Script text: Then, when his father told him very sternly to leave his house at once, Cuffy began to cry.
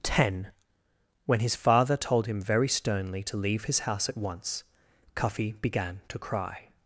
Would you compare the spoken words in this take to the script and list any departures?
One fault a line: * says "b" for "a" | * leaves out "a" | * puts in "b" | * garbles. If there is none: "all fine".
* says "Ten" for "Then"